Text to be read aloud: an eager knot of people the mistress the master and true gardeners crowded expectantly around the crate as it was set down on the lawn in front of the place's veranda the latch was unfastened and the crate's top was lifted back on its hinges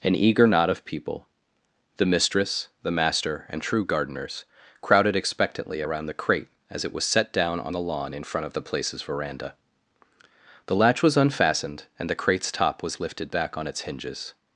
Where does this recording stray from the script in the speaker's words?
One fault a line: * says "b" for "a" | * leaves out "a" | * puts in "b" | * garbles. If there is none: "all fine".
all fine